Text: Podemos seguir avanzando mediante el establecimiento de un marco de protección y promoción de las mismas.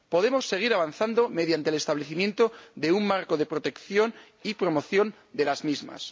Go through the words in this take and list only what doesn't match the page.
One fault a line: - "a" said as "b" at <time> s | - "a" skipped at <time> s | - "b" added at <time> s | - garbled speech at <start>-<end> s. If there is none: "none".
none